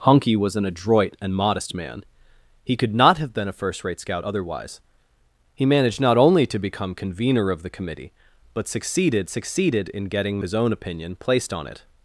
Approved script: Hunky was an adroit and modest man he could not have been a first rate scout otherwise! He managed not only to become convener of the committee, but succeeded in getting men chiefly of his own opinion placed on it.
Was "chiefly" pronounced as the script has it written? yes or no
no